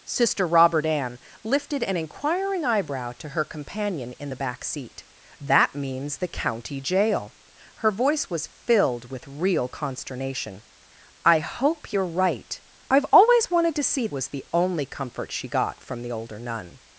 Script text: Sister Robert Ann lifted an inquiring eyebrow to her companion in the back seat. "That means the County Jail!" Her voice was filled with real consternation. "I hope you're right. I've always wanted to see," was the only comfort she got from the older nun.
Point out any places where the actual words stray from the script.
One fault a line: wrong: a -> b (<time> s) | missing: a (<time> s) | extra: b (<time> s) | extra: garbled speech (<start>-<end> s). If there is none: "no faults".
no faults